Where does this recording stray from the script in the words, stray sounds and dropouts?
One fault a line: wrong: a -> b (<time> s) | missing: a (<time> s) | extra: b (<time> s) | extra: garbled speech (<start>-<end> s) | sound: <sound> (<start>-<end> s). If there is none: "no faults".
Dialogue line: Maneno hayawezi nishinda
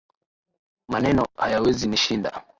no faults